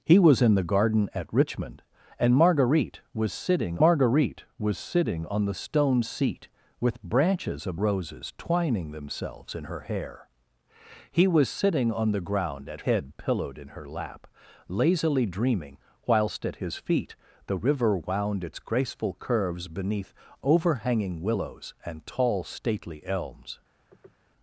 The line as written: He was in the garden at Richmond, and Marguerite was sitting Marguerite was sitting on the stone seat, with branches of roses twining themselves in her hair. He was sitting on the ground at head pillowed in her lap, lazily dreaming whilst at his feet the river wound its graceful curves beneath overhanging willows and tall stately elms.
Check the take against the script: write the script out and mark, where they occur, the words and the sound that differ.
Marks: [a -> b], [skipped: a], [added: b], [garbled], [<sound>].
He was in the garden at Richmond, and Marguerite was sitting Marguerite was sitting on the stone seat, with branches of roses twining themselves in her hair. He was sitting on the ground at head pillowed in her lap, lazily dreaming whilst at his feet the river wound its graceful curves beneath overhanging willows and tall stately elms. [sniff]